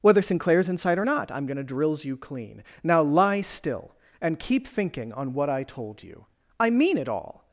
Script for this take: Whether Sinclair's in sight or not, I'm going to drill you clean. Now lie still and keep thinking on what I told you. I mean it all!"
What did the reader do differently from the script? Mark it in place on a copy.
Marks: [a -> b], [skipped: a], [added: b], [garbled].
Whether Sinclair's in sight or not, I'm going to [drill -> drills] you clean. Now lie still and keep thinking on what I told you. I mean it all!"